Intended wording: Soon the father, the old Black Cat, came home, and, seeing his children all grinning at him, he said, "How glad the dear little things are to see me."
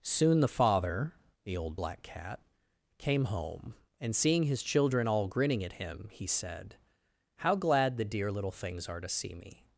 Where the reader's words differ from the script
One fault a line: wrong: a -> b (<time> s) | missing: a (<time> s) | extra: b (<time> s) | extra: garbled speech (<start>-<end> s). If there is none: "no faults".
no faults